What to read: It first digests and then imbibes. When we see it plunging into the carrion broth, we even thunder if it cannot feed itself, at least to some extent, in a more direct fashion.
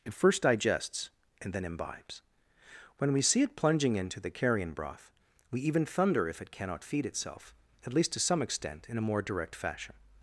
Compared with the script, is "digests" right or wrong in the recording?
right